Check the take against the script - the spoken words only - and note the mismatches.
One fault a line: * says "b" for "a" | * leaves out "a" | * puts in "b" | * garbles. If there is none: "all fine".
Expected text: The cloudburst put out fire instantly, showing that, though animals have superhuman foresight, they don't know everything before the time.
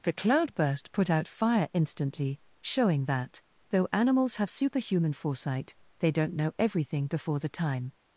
all fine